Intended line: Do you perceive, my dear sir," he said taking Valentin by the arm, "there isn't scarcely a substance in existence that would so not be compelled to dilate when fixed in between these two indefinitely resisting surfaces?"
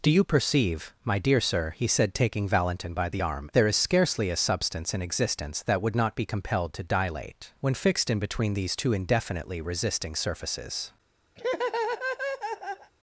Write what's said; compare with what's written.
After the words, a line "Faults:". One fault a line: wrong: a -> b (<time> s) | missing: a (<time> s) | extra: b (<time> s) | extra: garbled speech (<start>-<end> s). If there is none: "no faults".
Do you perceive, my dear sir," he said taking Valentin by the arm, "there is scarcely a substance in existence that would not be compelled to dilate when fixed in between these two indefinitely resisting surfaces?"
Faults:
wrong: isn't -> is (3.7 s)
missing: so (6.0 s)